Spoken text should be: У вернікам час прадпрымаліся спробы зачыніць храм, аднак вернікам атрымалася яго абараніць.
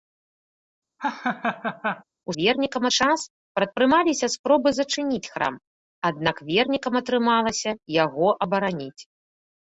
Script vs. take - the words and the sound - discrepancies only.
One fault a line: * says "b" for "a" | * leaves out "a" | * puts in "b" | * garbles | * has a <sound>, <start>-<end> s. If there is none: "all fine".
* has a laugh, 1.0-2.0 s